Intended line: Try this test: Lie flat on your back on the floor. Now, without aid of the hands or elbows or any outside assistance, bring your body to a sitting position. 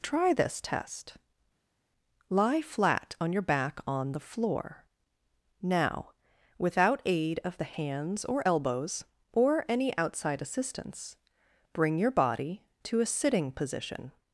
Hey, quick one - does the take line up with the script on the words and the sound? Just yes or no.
yes